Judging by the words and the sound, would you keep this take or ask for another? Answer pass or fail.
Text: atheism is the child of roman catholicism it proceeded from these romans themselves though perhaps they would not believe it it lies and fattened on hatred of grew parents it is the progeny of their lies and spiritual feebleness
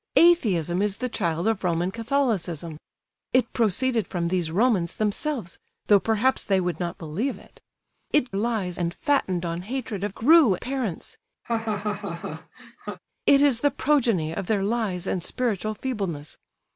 fail